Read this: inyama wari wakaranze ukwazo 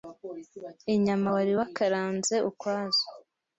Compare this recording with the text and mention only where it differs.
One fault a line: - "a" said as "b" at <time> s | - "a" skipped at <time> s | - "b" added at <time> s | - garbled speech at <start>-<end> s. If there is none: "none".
none